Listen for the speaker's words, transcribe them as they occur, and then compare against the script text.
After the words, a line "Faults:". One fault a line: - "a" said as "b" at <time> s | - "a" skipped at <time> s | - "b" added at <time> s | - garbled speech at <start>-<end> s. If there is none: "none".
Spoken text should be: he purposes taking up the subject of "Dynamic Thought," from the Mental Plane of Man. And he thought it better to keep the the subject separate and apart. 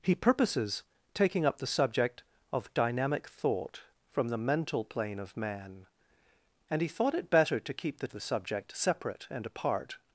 he purposes taking up the subject of "Dynamic Thought," from the Mental Plane of Man. And he thought it better to keep the the subject separate and apart.
Faults:
none